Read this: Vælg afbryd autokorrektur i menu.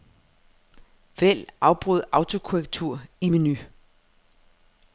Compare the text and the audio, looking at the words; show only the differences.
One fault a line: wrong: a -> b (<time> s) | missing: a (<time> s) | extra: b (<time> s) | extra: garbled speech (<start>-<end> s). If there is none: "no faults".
no faults